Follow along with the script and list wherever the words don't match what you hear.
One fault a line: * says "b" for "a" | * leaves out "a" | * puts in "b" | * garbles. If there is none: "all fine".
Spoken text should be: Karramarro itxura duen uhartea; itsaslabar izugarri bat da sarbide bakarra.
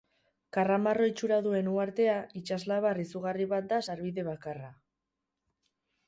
all fine